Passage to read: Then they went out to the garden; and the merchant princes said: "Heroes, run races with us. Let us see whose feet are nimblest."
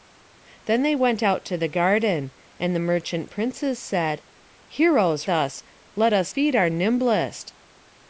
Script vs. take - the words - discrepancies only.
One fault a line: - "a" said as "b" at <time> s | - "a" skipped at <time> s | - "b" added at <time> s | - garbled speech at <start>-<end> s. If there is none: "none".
- "run races with" skipped at 5.3 s
- "see whose" skipped at 6.3 s